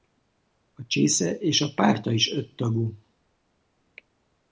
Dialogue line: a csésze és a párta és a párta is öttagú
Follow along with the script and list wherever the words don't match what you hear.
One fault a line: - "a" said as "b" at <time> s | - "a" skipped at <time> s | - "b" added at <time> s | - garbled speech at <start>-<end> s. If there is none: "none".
- "és a párta" skipped at 2.1 s